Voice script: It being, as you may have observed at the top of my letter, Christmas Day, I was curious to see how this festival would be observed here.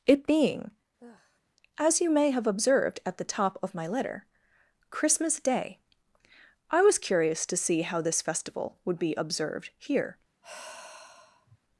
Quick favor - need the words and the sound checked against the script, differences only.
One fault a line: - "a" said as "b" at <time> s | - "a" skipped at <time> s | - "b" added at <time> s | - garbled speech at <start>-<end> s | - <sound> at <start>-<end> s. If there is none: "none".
- sigh at 1.0-1.4 s
- sigh at 10.4-11.6 s